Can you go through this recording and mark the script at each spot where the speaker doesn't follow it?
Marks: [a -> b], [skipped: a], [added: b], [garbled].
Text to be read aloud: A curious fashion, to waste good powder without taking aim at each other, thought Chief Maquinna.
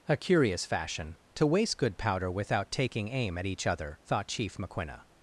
A curious fashion, to waste good powder without taking aim at each other, thought Chief Maquinna.